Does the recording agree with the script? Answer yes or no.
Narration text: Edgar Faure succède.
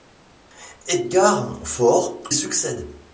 yes